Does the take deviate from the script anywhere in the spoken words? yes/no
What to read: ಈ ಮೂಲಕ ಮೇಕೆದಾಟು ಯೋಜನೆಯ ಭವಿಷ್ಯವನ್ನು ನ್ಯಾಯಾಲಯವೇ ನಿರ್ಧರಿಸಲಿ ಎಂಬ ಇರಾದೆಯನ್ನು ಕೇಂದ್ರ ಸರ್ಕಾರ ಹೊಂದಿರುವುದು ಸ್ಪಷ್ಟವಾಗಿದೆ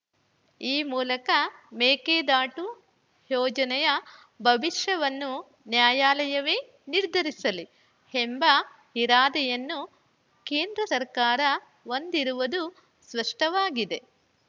no